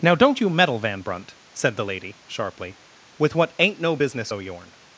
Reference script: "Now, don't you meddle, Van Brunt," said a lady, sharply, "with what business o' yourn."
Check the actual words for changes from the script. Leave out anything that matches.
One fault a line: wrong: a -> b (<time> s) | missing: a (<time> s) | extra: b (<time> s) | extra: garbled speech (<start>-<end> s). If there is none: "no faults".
wrong: a -> the (1.8 s)
extra: ain't no (3.6 s)